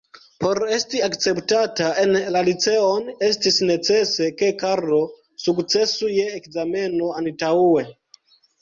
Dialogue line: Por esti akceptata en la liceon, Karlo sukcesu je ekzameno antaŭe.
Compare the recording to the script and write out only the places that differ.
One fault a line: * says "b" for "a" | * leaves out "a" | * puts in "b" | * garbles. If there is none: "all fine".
* puts in "estis necese ke"